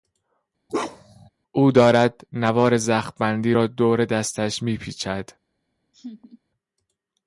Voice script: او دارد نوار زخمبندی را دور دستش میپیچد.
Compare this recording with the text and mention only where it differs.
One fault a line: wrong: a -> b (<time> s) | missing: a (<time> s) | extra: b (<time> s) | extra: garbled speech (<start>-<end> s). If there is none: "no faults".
no faults